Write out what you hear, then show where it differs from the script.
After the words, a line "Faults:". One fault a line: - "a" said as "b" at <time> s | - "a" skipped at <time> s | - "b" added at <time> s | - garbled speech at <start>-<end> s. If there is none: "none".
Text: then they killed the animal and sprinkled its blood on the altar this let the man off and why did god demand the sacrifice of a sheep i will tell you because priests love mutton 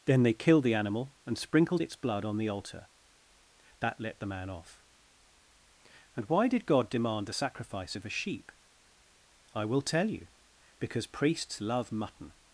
then they killed the animal and sprinkled its blood on the altar that let the man off and why did god demand the sacrifice of a sheep i will tell you because priests love mutton
Faults:
- "this" said as "that" at 3.8 s